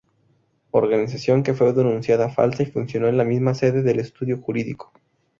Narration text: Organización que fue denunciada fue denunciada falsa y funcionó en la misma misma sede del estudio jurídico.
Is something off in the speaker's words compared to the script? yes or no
yes